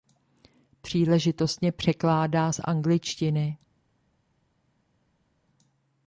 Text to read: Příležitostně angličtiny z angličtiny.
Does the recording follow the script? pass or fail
fail